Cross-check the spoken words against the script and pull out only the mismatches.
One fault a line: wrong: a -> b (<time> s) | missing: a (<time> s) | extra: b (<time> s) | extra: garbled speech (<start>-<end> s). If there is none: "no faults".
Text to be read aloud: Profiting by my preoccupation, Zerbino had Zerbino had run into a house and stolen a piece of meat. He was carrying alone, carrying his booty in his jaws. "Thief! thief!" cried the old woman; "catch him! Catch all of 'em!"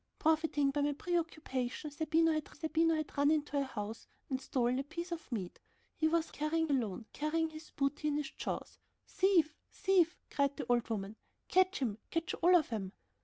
no faults